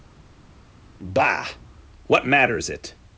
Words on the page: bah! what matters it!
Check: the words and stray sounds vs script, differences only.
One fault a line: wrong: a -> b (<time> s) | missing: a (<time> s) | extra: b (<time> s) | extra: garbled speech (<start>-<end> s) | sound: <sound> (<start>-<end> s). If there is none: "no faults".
no faults